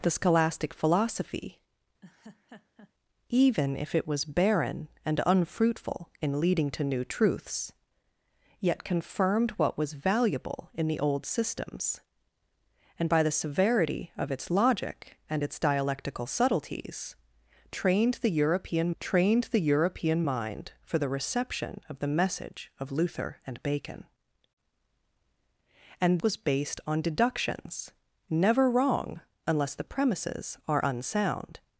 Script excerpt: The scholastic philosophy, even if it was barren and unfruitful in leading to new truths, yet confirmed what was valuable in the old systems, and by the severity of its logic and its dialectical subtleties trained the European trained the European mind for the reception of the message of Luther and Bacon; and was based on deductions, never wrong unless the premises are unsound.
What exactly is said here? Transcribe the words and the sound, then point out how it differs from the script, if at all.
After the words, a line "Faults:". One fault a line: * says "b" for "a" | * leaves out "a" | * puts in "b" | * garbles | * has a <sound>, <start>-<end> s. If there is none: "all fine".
The scholastic philosophy, even if it was barren and unfruitful in leading to new truths, yet confirmed what was valuable in the old systems, and by the severity of its logic and its dialectical subtleties trained the European trained the European mind for the reception of the message of Luther and Bacon; and was based on deductions, never wrong unless the premises are unsound.
Faults:
* has a laugh, 2.0-2.9 s